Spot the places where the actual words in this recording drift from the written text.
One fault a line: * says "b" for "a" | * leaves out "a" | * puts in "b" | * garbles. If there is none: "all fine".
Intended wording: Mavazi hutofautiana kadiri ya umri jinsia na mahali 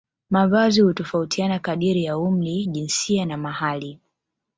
all fine